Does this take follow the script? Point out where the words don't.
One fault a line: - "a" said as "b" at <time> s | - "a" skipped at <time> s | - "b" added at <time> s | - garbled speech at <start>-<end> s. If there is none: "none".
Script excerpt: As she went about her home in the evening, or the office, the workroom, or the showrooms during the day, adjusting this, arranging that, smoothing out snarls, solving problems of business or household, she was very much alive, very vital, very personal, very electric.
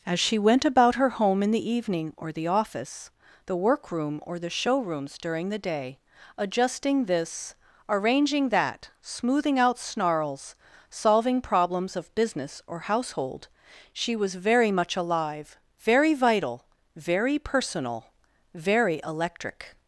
none